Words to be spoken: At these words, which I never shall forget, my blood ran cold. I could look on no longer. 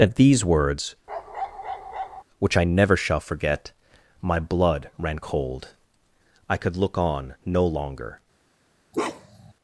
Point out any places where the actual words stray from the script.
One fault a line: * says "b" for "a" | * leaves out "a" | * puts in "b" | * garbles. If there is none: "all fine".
all fine